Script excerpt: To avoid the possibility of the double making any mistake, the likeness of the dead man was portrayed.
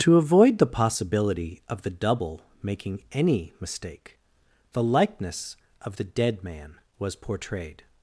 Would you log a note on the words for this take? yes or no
no